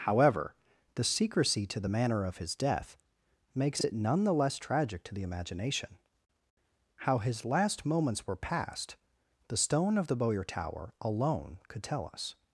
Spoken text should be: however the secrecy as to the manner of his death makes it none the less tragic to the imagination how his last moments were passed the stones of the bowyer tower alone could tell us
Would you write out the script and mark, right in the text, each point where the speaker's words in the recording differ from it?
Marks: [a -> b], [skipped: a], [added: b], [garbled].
however the secrecy [skipped: as] to the manner of his death makes it none the less tragic to the imagination how his last moments were passed the [stones -> stone] of the bowyer tower alone could tell us